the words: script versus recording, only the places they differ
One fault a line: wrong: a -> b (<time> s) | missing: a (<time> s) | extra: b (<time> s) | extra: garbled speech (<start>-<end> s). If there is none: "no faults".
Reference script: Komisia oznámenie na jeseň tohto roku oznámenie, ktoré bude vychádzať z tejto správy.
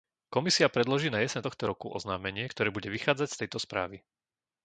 wrong: oznámenie -> predloží (0.7 s)